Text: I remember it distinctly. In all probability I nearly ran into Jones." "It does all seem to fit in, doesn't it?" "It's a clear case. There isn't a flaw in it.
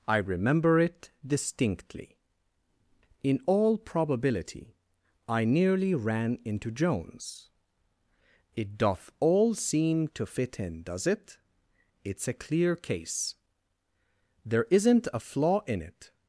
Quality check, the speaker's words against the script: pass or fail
fail